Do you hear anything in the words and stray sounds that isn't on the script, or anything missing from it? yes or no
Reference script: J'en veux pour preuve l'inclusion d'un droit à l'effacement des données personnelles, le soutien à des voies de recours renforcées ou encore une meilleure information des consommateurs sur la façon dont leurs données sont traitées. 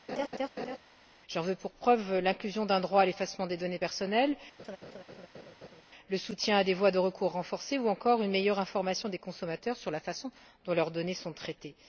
yes